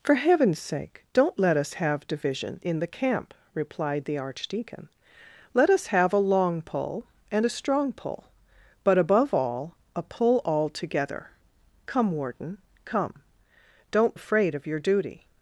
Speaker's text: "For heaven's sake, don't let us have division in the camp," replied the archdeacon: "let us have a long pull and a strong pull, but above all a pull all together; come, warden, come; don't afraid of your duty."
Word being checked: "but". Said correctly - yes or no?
yes